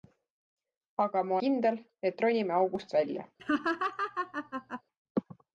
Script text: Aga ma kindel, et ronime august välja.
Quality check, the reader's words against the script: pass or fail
pass